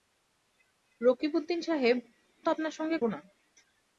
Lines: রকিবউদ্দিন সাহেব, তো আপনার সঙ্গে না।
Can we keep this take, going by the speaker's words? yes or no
yes